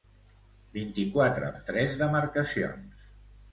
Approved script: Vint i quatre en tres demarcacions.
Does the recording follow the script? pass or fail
pass